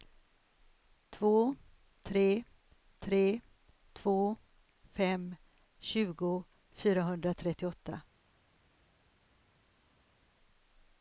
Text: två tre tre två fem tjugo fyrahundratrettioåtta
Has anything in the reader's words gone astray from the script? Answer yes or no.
no